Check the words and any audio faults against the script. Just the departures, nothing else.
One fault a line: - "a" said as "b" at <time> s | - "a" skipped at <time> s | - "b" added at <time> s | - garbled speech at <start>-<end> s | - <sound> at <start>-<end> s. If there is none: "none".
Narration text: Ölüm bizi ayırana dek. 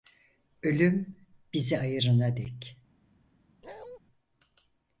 - bark at 3.6-4.0 s